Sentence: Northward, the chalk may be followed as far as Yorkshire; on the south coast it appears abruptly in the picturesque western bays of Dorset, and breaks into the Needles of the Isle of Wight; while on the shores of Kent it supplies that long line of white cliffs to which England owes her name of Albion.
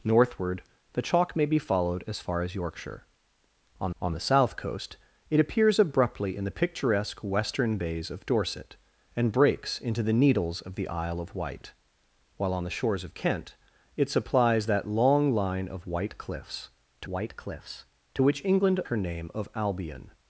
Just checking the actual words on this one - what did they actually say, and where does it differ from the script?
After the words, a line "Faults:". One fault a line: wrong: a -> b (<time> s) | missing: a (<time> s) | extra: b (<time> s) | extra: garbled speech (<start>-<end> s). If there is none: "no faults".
Northward, the chalk may be followed as far as Yorkshire; on on the south coast it appears abruptly in the picturesque western bays of Dorset, and breaks into the Needles of the Isle of Wight; while on the shores of Kent it supplies that long line of white cliffs to white cliffs to which England her name of Albion.
Faults:
extra: on (4.0 s)
extra: white cliffs to (17.1 s)
missing: owes (18.8 s)